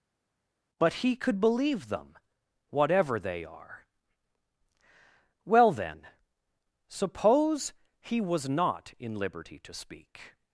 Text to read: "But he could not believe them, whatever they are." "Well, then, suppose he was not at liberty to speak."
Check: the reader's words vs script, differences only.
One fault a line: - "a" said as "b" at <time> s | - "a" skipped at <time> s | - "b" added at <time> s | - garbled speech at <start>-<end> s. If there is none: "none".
- "not" skipped at 1.4 s
- "at" said as "in" at 9.0 s